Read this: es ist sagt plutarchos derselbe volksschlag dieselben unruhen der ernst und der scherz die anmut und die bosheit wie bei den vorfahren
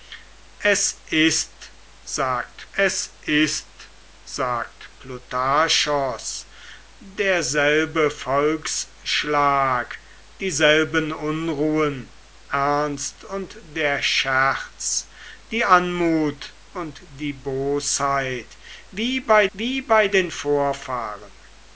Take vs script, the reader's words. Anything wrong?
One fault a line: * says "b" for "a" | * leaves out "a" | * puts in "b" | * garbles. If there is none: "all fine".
* puts in "es ist sagt"
* leaves out "der"
* puts in "wie bei"